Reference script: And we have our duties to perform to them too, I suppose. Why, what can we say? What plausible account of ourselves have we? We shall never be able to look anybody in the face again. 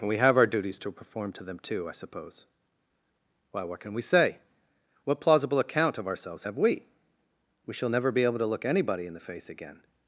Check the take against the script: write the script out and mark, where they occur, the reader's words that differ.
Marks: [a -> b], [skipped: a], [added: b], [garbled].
And we have our duties to perform to them too, I suppose. Why, what can we say? What plausible account of ourselves have we? We shall never be able to look anybody in the face again.